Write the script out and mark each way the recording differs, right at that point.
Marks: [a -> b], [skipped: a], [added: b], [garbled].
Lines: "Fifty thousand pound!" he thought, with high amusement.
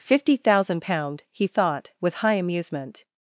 "Fifty thousand pound!" he thought, with high amusement.